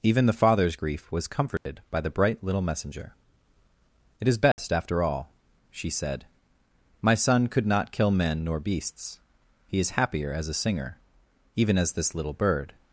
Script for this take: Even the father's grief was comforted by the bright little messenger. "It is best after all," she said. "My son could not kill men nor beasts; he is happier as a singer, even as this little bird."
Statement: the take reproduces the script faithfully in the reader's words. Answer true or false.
true